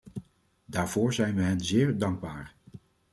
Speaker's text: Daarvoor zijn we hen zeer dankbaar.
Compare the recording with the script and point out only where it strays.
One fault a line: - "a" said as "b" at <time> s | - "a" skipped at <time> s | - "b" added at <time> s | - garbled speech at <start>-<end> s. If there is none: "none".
none